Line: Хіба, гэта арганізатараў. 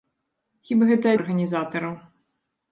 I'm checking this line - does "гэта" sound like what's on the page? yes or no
yes